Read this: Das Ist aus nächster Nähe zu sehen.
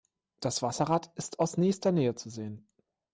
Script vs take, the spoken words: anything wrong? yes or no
yes